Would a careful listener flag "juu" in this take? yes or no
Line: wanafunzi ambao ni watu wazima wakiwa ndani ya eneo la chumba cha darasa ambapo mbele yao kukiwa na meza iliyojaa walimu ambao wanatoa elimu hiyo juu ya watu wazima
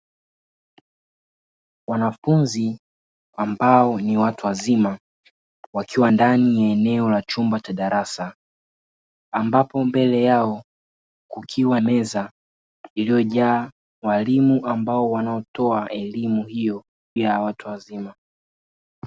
yes